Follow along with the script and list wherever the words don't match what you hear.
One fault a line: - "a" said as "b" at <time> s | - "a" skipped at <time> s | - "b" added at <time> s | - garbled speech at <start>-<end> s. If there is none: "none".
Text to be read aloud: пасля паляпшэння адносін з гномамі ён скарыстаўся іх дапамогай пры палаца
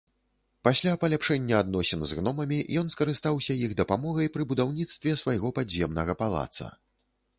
- "будаўніцтве свайго падземнага" added at 4.5 s